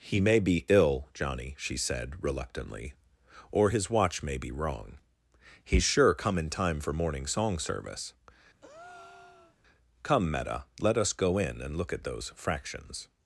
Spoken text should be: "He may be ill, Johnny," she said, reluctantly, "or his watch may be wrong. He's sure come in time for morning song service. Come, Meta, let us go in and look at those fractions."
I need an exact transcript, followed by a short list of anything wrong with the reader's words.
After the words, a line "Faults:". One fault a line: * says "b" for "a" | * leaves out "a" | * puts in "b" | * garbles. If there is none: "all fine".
"He may be ill, Johnny," she said, reluctantly, "or his watch may be wrong. He's sure come in time for morning song service. Come, Meta, let us go in and look at those fractions."
Faults:
all fine